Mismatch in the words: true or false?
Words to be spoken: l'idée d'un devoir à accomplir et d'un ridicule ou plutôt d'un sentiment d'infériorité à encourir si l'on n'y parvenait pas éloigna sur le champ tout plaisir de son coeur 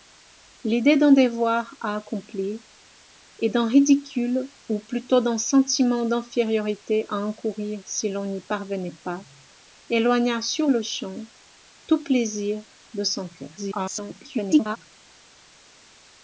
true